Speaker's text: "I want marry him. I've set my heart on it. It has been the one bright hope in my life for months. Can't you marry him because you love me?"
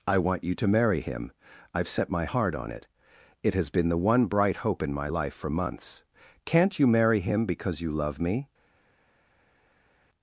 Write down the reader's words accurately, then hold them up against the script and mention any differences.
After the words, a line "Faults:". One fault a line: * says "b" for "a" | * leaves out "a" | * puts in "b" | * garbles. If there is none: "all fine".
"I want you to marry him. I've set my heart on it. It has been the one bright hope in my life for months. Can't you marry him because you love me?"
Faults:
* puts in "you to"